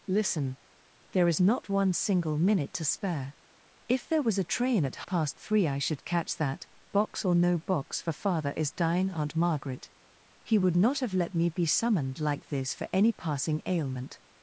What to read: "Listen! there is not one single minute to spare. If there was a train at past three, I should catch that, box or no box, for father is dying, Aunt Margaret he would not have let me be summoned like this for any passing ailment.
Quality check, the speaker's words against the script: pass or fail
pass